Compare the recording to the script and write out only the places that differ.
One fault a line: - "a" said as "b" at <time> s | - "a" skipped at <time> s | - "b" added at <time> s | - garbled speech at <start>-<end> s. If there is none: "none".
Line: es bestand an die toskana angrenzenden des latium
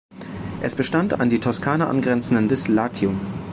none